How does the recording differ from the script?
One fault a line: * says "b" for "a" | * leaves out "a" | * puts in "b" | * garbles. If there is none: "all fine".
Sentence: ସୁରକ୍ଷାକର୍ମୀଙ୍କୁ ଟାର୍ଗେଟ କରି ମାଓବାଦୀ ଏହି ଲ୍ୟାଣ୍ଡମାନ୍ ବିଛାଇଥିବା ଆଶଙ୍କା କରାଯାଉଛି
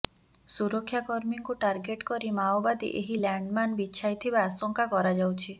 all fine